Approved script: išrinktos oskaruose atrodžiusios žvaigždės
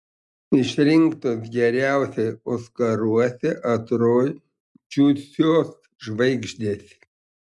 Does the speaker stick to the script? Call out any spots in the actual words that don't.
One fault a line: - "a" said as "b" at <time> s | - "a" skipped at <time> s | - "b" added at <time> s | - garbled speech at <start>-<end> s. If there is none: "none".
- "geriausiai" added at 1.6 s